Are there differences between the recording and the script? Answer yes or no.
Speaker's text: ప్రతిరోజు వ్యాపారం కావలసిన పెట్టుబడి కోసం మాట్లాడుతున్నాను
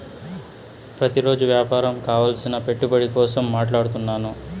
no